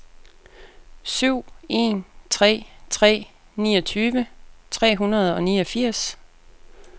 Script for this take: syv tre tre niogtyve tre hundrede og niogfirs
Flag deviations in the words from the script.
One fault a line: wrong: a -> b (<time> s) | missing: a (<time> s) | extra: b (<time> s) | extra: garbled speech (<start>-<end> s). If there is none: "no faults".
extra: en (1.7 s)